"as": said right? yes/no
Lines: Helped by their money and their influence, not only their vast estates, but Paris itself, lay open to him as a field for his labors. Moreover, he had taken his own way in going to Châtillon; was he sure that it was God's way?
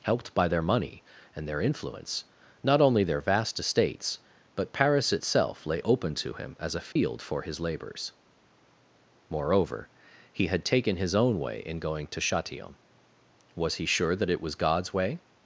yes